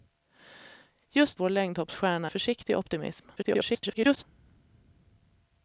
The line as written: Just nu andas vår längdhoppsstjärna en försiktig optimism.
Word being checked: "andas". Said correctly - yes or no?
no